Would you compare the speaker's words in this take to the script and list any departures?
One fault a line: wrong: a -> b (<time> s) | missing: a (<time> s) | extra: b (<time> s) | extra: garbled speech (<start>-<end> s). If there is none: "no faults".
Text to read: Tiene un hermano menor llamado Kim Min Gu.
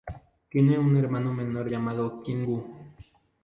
missing: Min (2.5 s)